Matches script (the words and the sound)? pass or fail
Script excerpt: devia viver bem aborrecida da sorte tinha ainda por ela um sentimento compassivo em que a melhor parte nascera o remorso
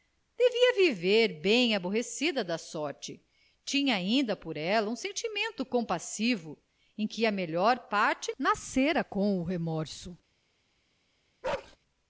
fail